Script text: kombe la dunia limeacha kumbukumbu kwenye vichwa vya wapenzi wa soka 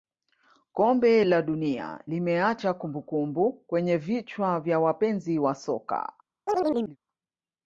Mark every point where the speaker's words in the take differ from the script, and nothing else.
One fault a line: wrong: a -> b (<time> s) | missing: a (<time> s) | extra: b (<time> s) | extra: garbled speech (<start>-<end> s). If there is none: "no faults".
no faults